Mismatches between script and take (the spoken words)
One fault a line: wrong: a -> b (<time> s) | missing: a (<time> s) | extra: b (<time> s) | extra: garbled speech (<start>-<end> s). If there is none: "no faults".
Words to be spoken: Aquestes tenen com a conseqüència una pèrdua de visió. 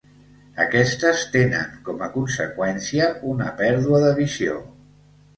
no faults